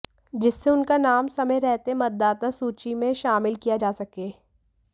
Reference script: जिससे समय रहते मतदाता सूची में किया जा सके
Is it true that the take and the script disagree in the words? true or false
true